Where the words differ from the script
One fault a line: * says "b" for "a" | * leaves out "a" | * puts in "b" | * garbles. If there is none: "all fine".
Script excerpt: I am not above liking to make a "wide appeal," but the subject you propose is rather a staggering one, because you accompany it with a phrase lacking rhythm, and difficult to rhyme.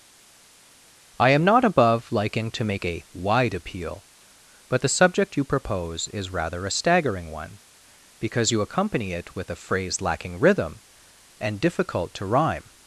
all fine